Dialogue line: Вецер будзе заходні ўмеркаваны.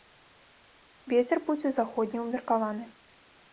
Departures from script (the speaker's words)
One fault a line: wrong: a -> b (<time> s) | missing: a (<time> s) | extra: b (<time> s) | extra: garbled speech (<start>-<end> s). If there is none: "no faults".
no faults